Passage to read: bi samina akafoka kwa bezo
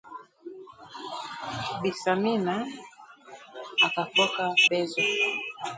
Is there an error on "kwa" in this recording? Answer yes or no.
yes